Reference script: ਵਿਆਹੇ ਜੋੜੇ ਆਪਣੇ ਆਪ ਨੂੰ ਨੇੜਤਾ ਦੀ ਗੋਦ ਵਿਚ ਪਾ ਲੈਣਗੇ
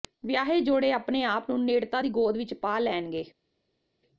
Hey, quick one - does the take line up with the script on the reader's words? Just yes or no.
yes